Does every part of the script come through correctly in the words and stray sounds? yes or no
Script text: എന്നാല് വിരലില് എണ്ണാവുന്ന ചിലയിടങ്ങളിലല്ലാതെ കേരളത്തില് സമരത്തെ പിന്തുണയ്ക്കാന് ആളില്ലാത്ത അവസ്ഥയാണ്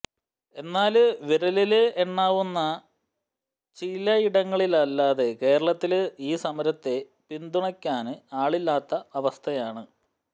no